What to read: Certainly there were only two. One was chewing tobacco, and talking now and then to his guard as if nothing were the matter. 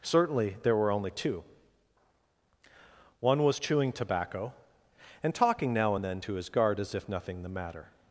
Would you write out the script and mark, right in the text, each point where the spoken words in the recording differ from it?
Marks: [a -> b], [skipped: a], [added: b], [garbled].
Certainly there were only two. One was chewing tobacco, and talking now and then to his guard as if nothing [skipped: were] the matter.